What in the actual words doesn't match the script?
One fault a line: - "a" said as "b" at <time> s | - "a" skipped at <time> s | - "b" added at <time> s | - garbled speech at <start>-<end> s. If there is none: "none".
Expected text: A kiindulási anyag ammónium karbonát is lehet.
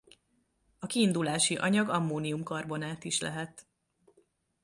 none